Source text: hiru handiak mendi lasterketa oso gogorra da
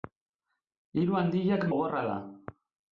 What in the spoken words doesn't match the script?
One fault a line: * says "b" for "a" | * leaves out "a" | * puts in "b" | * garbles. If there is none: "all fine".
* leaves out "mendi lasterketa oso"